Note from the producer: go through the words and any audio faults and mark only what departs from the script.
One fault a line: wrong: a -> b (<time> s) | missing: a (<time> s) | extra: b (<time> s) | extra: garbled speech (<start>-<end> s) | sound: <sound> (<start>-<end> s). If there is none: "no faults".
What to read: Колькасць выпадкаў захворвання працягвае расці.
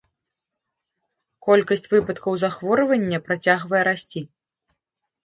no faults